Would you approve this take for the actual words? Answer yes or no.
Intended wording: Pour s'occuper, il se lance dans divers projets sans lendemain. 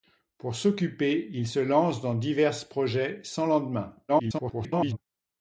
no